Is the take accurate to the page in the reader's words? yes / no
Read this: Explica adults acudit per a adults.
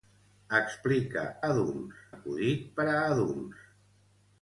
yes